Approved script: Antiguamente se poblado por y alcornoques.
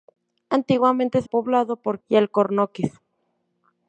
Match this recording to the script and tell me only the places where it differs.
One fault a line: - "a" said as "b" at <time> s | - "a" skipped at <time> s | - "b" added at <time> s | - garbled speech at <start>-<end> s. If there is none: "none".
none